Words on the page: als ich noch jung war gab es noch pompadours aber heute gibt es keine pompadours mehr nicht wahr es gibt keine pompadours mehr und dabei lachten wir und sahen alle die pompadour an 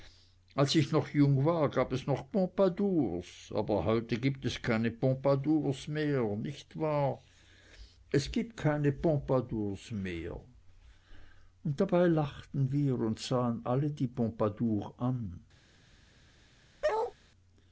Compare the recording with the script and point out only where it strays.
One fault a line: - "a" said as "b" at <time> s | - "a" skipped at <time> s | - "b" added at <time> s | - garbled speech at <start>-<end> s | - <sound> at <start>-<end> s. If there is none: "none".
- bark at 16.8-17.1 s